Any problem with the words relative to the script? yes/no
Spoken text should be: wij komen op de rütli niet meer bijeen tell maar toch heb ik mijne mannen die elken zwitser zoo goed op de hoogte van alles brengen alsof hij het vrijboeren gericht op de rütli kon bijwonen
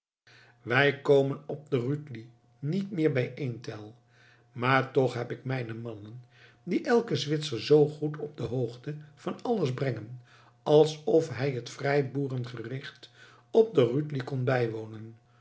no